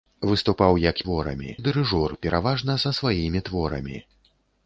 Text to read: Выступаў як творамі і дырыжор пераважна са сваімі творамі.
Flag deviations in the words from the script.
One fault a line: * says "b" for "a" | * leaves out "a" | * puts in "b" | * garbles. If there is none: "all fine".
all fine